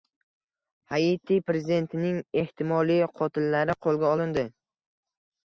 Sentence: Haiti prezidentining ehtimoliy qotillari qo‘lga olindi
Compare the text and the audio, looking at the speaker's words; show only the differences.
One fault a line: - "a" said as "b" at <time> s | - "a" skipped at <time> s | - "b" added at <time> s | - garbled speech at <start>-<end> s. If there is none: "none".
none